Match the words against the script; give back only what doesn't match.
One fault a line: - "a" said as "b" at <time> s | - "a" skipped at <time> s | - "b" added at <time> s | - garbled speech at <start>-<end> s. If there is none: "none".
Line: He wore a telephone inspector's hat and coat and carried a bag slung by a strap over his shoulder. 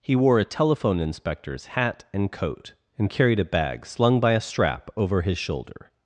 none